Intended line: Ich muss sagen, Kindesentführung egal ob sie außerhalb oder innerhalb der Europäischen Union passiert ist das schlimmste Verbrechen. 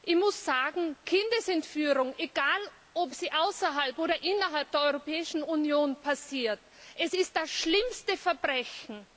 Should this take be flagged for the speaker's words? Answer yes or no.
no